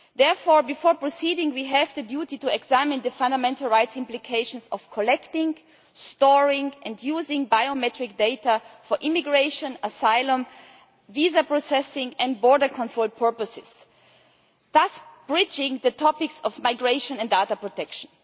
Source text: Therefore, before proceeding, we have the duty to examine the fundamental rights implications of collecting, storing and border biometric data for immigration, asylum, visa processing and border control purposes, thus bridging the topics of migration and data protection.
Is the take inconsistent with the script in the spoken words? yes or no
yes